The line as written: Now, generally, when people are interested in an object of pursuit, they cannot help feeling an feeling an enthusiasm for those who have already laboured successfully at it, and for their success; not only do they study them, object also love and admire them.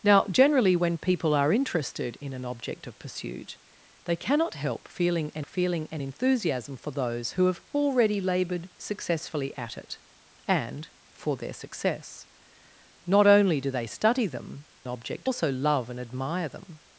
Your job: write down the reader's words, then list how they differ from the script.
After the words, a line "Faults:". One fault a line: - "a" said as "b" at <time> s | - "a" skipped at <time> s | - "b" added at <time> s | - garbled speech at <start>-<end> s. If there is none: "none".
Now, generally, when people are interested in an object of pursuit, they cannot help feeling an feeling an enthusiasm for those who have already laboured successfully at it, and for their success; not only do they study them, object also love and admire them.
Faults:
none